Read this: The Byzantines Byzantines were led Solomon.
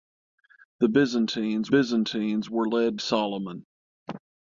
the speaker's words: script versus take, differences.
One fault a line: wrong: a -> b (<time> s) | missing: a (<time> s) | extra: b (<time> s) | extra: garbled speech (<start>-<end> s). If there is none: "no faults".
no faults